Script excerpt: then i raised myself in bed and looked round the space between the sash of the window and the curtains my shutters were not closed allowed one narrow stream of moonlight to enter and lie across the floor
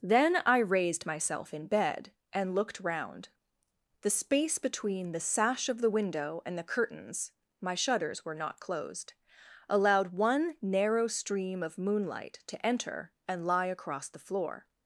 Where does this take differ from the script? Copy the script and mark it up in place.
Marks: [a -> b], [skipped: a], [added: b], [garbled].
then i raised myself in bed and looked round the space between the sash of the window and the curtains my shutters were not closed allowed one narrow stream of moonlight to enter and lie across the floor